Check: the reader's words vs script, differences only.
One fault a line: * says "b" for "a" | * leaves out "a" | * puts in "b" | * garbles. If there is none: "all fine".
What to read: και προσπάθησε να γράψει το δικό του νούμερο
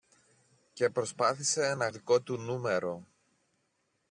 * leaves out "γράψει το"